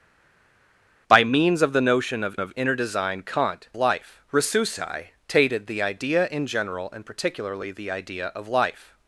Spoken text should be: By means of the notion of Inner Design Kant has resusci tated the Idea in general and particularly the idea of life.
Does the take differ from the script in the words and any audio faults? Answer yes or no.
yes